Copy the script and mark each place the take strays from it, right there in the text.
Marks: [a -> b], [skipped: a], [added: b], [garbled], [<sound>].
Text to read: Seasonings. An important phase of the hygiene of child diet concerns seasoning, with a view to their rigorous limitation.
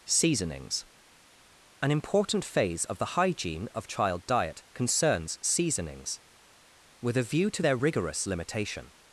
Seasonings. An important phase of the hygiene of child diet concerns [seasoning, -> seasonings] with a view to their rigorous limitation.